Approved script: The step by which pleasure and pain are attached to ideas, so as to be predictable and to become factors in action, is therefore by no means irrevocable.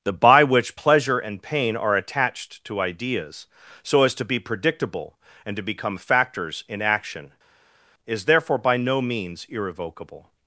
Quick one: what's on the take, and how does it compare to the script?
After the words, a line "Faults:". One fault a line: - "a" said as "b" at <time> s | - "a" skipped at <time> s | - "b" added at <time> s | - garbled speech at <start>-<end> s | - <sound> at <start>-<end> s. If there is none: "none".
The by which pleasure and pain are attached to ideas, so as to be predictable and to become factors in action, is therefore by no means irrevocable.
Faults:
- "step" skipped at 0.1 s